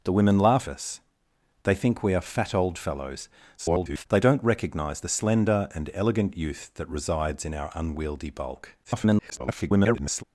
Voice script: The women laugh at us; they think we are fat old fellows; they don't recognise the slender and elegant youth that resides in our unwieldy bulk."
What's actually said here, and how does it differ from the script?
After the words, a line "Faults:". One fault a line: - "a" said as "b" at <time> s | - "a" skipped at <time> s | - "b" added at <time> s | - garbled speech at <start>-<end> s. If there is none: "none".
The women laugh us; they think we are fat old fellows; [garbled] they don't recognise the slender and elegant youth that resides in our unwieldy bulk." [garbled]
Faults:
- "at" skipped at 0.7 s
- garbled speech at 3.6-4.1 s
- garbled speech at 8.8-10.2 s